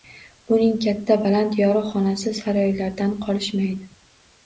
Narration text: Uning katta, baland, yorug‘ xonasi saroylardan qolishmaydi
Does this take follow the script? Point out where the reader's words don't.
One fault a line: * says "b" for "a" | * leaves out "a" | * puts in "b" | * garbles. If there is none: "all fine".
all fine